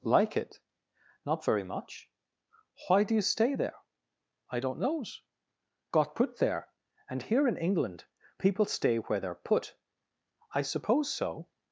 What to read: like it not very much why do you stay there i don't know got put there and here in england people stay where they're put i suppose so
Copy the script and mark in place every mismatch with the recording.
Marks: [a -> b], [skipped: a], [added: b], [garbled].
like it not very much why do you stay there i don't [know -> knows] got put there and here in england people stay where they're put i suppose so